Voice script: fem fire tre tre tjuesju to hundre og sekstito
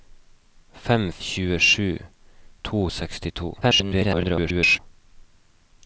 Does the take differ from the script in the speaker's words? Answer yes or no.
yes